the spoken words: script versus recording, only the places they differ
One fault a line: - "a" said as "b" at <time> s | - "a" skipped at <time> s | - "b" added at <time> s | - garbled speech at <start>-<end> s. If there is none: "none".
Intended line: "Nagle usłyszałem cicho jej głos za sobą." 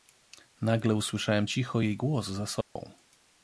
none